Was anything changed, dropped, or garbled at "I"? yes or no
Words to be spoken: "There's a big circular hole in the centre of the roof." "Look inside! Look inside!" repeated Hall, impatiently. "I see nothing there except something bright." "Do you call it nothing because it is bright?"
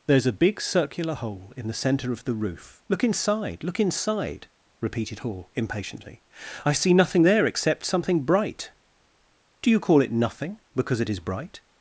no